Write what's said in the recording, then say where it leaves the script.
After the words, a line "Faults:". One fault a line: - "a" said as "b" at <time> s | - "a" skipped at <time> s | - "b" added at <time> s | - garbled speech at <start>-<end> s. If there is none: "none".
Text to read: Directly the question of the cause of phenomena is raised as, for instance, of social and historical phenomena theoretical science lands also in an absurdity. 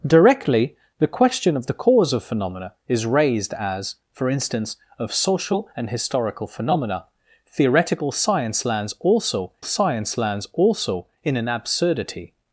Directly the question of the cause of phenomena is raised as, for instance, of social and historical phenomena theoretical science lands also science lands also in an absurdity.
Faults:
- "science lands also" added at 9.6 s